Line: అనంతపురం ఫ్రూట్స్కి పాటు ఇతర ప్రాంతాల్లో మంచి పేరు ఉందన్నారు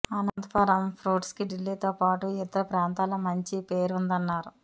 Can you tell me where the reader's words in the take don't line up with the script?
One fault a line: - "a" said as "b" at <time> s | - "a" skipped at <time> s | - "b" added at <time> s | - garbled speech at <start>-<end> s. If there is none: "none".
- "ఢిల్లీతో" added at 1.5 s